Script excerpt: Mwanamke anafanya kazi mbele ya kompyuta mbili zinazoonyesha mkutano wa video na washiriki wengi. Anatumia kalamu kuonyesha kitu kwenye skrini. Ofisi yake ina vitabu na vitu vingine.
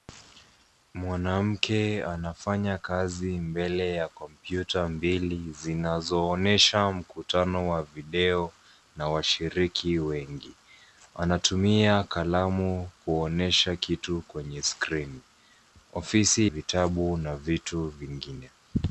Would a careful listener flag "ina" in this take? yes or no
yes